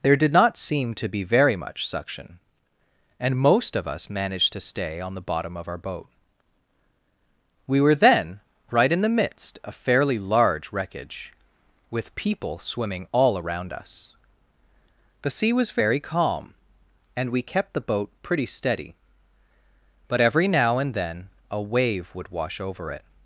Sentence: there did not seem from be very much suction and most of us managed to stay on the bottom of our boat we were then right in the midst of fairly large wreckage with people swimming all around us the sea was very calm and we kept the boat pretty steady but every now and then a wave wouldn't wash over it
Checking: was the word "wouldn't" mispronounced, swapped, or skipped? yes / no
yes